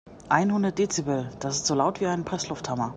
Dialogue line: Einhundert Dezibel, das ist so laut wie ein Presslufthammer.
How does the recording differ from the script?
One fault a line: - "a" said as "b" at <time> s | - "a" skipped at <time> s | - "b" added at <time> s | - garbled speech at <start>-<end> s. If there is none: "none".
none